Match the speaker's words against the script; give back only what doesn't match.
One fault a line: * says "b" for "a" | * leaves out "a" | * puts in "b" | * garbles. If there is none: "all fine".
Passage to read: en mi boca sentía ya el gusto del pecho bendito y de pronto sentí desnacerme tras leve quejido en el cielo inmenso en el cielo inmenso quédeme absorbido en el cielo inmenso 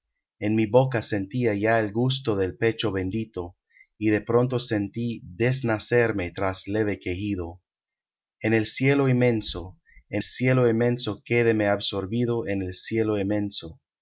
* leaves out "el"